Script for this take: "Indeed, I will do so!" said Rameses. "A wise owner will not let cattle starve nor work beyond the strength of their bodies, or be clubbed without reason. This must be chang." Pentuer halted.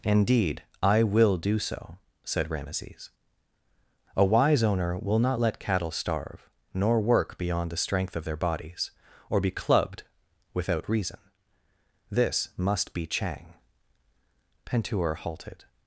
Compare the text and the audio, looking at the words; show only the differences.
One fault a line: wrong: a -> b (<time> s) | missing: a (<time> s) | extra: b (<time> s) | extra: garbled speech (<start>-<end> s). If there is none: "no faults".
no faults